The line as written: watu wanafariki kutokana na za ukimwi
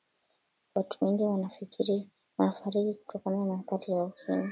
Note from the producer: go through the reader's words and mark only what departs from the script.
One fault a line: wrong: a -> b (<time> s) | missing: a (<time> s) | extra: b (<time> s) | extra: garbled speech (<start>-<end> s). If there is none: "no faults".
extra: wengi (1.0 s)
extra: athari (3.6 s)